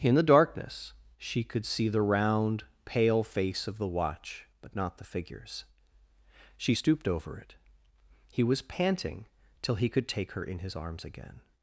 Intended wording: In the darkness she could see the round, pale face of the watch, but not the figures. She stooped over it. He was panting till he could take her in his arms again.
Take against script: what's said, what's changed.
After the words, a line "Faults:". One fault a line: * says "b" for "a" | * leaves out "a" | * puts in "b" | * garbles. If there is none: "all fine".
In the darkness she could see the round, pale face of the watch, but not the figures. She stooped over it. He was panting till he could take her in his arms again.
Faults:
all fine